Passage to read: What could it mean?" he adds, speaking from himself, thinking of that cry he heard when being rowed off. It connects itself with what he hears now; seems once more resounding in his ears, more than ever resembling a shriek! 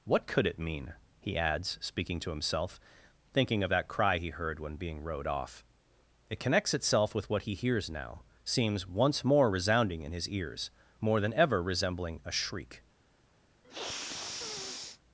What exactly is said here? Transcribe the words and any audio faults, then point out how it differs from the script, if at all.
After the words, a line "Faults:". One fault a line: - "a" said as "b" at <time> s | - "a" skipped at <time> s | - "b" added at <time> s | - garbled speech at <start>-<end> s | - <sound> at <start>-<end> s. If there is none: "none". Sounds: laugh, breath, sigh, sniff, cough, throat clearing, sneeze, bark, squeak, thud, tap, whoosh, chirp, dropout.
What could it mean?" he adds, speaking to himself, thinking of that cry he heard when being rowed off. It connects itself with what he hears now; seems once more resounding in his ears, more than ever resembling a shriek!
Faults:
- "from" said as "to" at 2.2 s
- sniff at 13.6-15.0 s